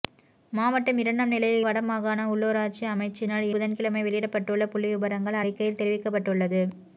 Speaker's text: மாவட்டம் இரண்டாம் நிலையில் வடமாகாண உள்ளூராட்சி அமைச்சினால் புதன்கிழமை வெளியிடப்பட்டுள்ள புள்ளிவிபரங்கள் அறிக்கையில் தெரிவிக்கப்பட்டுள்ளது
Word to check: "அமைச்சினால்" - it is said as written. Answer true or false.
true